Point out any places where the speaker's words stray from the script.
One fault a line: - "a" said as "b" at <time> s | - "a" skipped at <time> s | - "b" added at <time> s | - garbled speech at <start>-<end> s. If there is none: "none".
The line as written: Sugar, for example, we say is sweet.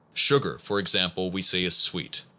none